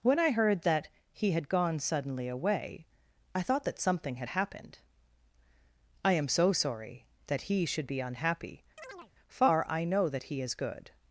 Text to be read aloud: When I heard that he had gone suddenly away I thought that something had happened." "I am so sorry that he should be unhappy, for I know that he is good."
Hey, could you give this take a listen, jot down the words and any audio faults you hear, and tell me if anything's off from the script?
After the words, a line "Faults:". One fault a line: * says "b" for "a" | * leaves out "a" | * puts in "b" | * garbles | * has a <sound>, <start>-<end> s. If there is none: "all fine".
When I heard that he had gone suddenly away I thought that something had happened." "I am so sorry that he should be unhappy, far I know that he is good."
Faults:
* has a chirp, 8.8-9.1 s
* says "far" for "for"